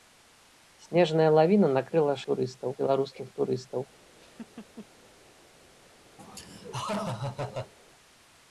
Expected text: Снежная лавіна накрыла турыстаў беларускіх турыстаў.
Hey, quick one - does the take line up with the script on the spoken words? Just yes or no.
yes